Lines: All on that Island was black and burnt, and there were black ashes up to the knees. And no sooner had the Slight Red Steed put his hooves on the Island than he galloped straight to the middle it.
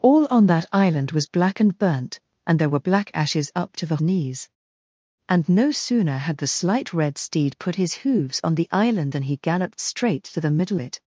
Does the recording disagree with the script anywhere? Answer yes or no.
no